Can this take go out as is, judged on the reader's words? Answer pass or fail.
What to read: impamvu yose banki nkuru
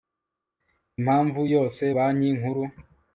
pass